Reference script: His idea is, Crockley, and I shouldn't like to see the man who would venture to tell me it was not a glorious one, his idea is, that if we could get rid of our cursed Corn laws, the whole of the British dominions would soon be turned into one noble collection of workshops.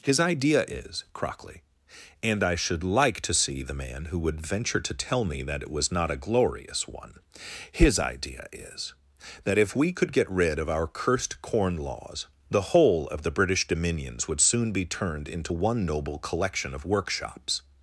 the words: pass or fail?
fail